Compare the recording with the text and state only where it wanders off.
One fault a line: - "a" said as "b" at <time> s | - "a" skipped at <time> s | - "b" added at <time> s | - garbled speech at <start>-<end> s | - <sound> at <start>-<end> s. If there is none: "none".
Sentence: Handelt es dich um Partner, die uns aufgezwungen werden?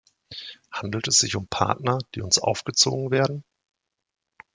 - "dich" said as "sich" at 1.2 s